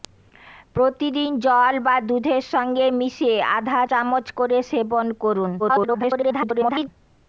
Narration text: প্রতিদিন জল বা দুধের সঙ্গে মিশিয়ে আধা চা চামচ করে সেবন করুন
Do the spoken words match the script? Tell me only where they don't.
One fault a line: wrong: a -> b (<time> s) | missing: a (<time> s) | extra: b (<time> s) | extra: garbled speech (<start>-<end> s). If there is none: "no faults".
missing: চা (3.8 s)
extra: garbled speech (5.6-6.9 s)